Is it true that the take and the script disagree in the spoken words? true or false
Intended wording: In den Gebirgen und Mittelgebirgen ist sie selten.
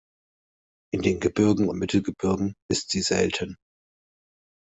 false